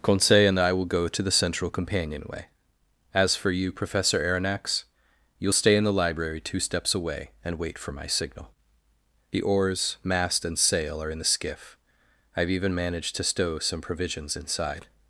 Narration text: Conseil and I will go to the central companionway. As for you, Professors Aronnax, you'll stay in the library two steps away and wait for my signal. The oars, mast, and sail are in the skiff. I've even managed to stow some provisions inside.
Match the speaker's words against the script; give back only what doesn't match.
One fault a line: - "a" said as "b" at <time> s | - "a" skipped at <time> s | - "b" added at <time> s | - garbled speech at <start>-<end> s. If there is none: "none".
- "Professors" said as "Professor" at 3.7 s